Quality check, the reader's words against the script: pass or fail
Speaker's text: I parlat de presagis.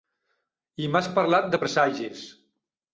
fail